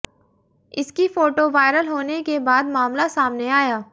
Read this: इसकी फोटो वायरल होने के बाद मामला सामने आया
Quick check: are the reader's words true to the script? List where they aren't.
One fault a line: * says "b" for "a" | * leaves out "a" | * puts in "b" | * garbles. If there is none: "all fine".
all fine